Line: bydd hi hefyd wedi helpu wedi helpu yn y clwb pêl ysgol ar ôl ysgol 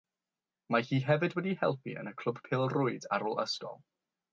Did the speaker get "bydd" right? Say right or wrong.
wrong